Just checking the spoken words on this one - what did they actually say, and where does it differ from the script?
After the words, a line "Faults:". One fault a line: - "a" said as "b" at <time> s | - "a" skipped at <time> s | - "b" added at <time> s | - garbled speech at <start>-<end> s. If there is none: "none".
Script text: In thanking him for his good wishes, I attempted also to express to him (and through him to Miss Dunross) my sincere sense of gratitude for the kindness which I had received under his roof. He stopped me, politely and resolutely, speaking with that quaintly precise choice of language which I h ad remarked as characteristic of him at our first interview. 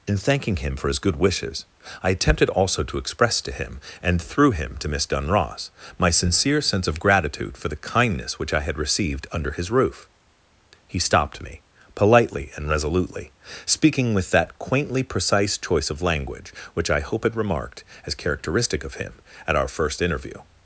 In thanking him for his good wishes, I attempted also to express to him (and through him to Miss Dunross) my sincere sense of gratitude for the kindness which I had received under his roof. He stopped me, politely and resolutely, speaking with that quaintly precise choice of language which I hope had remarked as characteristic of him at our first interview.
Faults:
- "h ad" said as "hope had" at 17.0 s